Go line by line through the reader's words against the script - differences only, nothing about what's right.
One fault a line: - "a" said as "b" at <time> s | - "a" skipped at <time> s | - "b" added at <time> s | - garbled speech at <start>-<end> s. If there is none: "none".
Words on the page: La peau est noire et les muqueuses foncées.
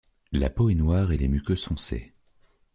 none